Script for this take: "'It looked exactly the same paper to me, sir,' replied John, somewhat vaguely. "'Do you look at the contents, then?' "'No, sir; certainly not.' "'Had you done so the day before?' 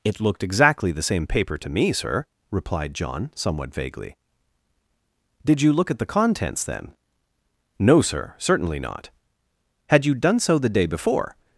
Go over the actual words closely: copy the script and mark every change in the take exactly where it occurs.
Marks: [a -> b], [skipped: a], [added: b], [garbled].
"'It looked exactly the same paper to me, sir,' replied John, somewhat vaguely. ["'Do -> Did] you look at the contents, then?' "'No, sir; certainly not.' "'Had you done so the day before?'